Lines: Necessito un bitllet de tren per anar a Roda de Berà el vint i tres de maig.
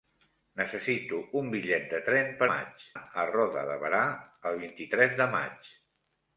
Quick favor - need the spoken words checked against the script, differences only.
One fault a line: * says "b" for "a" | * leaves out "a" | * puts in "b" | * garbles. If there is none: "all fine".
* says "maig" for "anar"